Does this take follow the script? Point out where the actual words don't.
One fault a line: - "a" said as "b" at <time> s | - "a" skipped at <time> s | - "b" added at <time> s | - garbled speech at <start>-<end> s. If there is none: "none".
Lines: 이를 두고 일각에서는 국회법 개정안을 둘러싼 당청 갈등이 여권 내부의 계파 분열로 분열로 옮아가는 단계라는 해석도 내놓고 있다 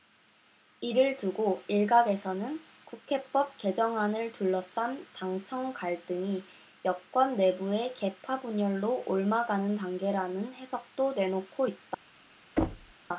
- "분열로" skipped at 9.0 s